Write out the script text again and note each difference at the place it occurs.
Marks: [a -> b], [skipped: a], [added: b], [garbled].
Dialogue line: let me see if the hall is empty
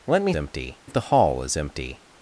let me [see -> empty] if the hall is empty